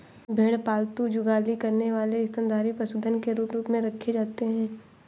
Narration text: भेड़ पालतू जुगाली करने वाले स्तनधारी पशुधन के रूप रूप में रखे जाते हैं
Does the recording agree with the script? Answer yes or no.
yes